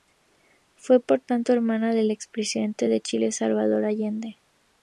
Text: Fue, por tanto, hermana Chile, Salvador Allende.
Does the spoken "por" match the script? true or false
true